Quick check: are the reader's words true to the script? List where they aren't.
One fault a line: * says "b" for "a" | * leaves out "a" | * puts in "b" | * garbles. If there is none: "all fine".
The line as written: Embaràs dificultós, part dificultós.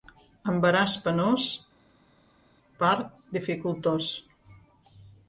* says "penós" for "dificultós"